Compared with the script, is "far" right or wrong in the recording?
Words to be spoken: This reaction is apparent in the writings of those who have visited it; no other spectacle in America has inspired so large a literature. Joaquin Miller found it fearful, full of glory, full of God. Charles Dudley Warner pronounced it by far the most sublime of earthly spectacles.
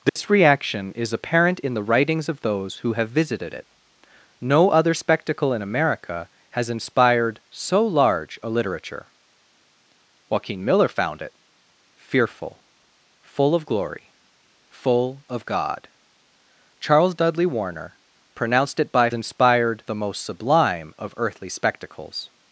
wrong